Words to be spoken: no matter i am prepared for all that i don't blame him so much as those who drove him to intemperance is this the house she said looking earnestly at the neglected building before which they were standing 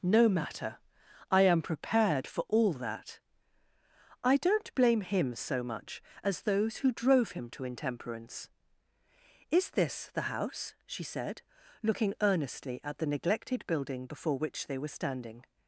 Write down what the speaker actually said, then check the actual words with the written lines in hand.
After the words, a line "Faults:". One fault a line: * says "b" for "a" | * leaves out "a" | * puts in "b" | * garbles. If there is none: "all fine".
no matter i am prepared for all that i don't blame him so much as those who drove him to intemperance is this the house she said looking earnestly at the neglected building before which they were standing
Faults:
all fine